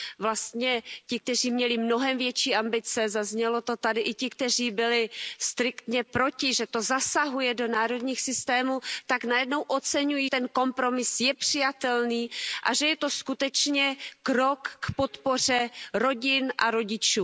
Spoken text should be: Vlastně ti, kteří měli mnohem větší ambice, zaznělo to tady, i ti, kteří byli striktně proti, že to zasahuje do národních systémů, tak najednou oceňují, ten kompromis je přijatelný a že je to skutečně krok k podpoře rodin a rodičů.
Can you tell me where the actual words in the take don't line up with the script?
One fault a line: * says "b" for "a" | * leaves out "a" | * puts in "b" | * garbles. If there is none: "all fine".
all fine